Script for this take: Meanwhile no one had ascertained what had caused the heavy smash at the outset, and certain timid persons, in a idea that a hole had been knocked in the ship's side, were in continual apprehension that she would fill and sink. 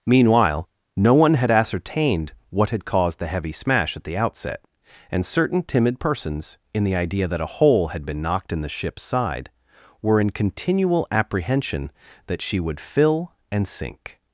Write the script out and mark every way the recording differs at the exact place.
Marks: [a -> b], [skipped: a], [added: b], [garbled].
Meanwhile no one had ascertained what had caused the heavy smash at the outset, and certain timid persons, in [a -> the] idea that a hole had been knocked in the ship's side, were in continual apprehension that she would fill and sink.